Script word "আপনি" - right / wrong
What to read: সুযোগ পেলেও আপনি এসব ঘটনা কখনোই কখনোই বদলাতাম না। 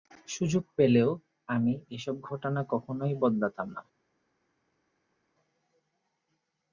wrong